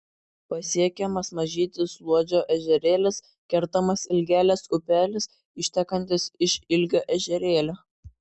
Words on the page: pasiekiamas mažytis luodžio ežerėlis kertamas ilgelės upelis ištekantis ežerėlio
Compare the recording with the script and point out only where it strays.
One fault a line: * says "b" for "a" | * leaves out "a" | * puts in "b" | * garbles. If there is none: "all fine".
* puts in "iš ilgio"